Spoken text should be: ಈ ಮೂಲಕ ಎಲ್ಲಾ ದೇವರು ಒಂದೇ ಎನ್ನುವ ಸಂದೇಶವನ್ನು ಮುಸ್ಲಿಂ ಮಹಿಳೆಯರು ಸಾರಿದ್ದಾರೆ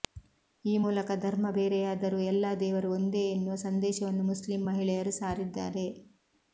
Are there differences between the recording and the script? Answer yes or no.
yes